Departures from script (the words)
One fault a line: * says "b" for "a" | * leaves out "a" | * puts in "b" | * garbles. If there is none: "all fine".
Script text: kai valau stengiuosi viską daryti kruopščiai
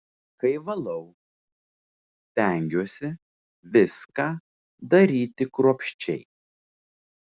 all fine